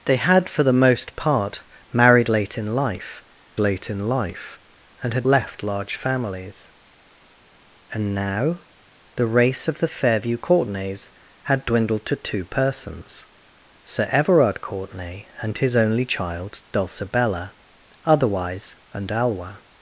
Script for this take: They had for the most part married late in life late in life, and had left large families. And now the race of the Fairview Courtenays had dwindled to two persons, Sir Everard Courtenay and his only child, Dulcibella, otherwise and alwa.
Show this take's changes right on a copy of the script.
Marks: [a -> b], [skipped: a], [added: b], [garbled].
They had for the most part married late in life late in life, and had left large families. And now the race of the Fairview Courtenays had dwindled to two persons, Sir Everard Courtenay and his only child, Dulcibella, otherwise and alwa.